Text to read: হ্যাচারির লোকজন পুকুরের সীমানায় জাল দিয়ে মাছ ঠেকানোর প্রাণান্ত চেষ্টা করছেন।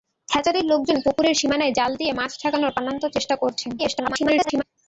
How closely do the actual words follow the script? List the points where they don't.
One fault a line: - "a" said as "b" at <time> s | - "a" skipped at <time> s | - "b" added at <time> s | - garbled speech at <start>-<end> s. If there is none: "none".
- garbled speech at 3.8-4.6 s